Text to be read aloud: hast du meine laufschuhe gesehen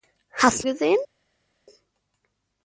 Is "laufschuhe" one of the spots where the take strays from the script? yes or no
yes